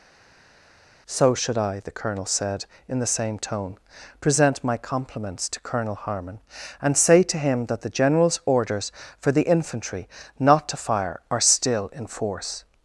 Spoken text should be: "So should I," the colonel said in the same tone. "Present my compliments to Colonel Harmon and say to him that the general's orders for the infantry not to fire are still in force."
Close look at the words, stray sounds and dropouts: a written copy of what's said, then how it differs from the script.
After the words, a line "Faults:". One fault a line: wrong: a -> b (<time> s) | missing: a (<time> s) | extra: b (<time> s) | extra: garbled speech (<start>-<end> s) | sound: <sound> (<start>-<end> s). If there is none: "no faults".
"So should I," the colonel said in the same tone. "Present my compliments to Colonel Harmon and say to him that the general's orders for the infantry not to fire are still in force."
Faults:
no faults